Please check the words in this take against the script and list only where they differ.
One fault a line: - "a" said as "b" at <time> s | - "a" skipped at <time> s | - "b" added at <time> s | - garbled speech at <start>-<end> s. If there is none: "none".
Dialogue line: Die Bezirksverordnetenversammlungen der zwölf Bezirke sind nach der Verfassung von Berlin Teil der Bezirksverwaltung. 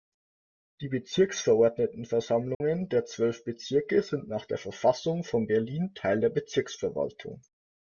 none